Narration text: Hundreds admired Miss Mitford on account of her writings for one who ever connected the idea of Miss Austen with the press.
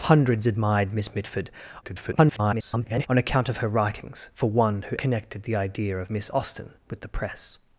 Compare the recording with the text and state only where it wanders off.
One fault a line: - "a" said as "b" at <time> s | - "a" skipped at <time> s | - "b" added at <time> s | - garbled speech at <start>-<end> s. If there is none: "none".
- garbled speech at 1.8-3.1 s
- "ever" skipped at 5.0 s